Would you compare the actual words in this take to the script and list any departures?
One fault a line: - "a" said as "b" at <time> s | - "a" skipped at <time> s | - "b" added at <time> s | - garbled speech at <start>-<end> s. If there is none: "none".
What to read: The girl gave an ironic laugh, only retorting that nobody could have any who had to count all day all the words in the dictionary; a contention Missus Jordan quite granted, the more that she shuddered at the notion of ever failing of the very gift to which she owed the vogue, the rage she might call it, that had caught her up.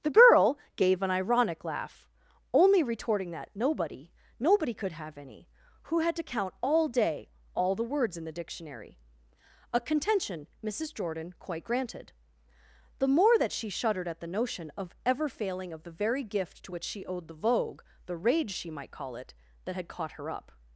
- "nobody" added at 4.4 s